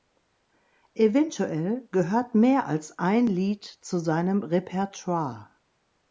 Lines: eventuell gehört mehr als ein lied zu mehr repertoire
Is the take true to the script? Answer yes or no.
no